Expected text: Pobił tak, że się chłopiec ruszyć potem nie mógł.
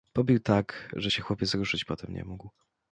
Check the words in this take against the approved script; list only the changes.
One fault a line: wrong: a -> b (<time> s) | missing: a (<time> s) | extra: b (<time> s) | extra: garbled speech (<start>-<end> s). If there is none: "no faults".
no faults